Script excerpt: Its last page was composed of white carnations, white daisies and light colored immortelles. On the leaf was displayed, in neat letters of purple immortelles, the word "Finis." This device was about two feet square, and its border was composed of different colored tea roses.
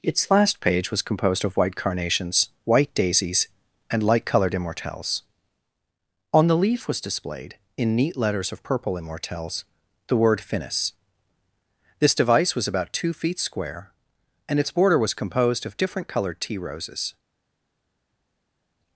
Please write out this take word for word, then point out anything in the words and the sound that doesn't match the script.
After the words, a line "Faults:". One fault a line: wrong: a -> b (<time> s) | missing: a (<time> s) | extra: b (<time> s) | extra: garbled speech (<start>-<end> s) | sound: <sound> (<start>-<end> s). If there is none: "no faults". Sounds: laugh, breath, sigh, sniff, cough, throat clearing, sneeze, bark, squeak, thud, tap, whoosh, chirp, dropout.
Its last page was composed of white carnations, white daisies and light colored immortelles. On the leaf was displayed, in neat letters of purple immortelles, the word "Finis." This device was about two feet square, and its border was composed of different colored tea roses.
Faults:
no faults